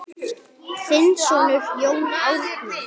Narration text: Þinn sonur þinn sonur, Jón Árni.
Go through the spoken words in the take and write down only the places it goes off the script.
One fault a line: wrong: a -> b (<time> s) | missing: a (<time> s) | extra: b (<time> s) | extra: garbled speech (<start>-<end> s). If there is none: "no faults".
missing: þinn sonur (1.7 s)